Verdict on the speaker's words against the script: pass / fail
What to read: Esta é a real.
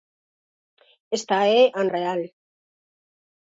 pass